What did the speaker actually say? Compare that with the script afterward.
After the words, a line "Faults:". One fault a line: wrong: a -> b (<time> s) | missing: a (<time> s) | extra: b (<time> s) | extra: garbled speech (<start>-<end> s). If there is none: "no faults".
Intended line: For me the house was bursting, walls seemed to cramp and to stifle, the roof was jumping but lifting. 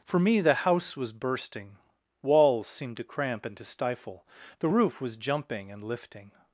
For me the house was bursting, walls seemed to cramp and to stifle, the roof was jumping and lifting.
Faults:
wrong: but -> and (5.7 s)